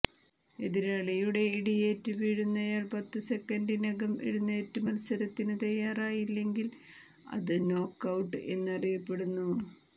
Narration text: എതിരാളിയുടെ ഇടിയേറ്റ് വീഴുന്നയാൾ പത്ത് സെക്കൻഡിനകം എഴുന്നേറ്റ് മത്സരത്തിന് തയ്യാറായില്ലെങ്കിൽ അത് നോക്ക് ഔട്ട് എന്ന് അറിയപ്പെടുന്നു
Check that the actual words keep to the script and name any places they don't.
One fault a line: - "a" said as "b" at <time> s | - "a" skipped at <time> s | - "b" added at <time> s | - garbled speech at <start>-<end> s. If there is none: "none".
none